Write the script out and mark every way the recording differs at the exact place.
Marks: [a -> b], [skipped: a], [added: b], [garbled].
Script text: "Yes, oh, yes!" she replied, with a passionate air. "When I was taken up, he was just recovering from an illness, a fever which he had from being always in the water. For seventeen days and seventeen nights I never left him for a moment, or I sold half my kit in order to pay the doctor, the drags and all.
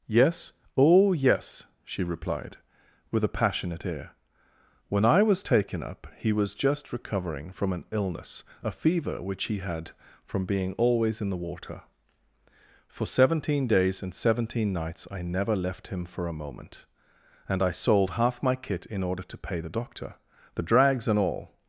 "Yes, oh, yes!" she replied, with a passionate air. "When I was taken up, he was just recovering from an illness, a fever which he had from being always in the water. For seventeen days and seventeen nights I never left him for a moment, [or -> and] I sold half my kit in order to pay the doctor, the drags and all.